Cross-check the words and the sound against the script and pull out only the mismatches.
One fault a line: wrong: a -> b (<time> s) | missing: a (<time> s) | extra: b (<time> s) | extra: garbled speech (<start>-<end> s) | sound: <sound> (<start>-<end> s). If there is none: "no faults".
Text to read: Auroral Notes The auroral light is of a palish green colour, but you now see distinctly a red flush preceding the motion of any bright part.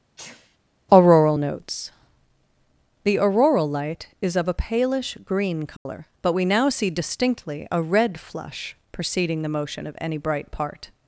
sound: sneeze (0.2-0.6 s)
sound: dropout (5.8-5.9 s)
wrong: you -> we (6.3 s)